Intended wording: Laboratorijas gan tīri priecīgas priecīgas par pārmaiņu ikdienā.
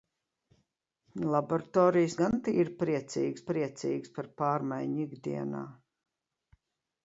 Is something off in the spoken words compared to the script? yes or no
no